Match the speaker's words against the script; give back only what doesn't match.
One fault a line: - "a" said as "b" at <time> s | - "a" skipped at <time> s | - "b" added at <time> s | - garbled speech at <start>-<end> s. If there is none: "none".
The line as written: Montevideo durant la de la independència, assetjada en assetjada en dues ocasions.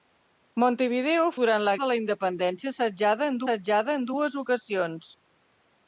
none